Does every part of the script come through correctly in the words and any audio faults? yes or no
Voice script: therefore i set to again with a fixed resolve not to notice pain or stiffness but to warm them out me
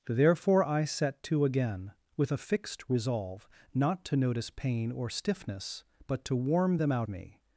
yes